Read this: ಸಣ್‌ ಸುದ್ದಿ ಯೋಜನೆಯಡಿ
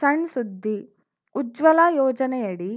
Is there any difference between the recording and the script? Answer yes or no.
yes